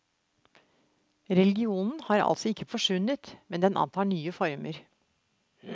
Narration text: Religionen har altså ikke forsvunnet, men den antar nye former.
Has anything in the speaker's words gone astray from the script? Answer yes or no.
no